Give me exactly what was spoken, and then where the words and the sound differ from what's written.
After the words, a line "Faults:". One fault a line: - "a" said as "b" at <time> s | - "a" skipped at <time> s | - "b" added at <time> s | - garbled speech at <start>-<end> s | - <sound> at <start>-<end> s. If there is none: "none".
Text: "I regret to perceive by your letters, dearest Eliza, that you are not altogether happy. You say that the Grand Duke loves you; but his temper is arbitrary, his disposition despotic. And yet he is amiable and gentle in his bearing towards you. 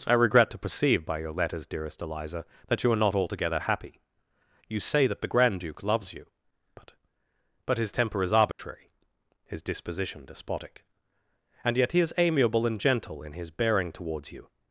"I regret to perceive by your letters, dearest Eliza, that you are not altogether happy. You say that the Grand Duke loves you; but but his temper is arbitrary, his disposition despotic. And yet he is amiable and gentle in his bearing towards you.
Faults:
- "but" added at 7.6 s
- dropout at 8.5-8.6 s